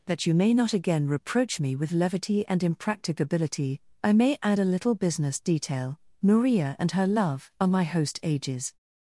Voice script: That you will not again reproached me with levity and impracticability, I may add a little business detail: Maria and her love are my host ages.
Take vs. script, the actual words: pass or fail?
fail